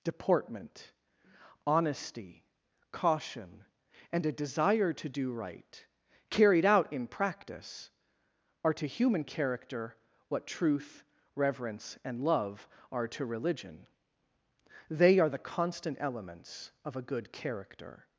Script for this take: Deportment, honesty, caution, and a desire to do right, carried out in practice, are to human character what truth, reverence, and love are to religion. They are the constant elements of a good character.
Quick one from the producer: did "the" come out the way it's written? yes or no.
yes